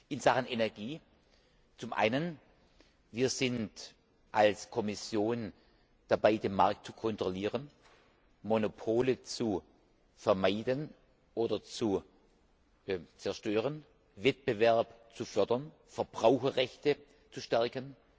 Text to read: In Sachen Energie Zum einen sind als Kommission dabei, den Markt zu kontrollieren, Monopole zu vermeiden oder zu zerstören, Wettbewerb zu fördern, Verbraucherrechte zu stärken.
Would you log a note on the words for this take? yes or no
no